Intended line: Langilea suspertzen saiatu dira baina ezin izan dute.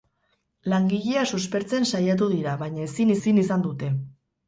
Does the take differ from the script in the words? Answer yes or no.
yes